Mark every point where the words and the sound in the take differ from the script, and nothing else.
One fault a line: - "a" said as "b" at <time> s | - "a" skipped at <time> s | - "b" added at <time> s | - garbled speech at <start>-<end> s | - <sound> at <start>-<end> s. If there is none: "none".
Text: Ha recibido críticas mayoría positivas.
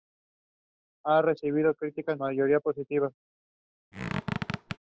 - squeak at 3.9-4.8 s